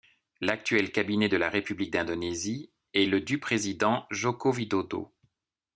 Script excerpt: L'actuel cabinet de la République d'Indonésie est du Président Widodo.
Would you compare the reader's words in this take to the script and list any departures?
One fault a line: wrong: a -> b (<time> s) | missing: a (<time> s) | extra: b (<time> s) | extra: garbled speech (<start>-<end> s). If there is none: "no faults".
extra: le (3.0 s)
extra: Joko (4.1 s)